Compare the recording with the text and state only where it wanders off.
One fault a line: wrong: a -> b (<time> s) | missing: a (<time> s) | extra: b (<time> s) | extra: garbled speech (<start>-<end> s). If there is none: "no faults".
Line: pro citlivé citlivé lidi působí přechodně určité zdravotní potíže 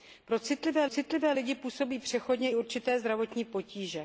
no faults